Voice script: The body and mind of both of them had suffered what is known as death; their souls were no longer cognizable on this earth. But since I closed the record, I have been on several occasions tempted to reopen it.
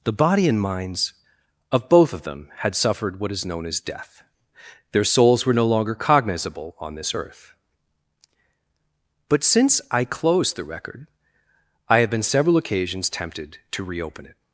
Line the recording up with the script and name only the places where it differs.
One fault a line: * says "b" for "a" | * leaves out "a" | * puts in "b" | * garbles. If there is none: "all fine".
* says "minds" for "mind"
* leaves out "on"